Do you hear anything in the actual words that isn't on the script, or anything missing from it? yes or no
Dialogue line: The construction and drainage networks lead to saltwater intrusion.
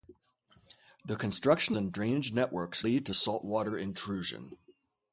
no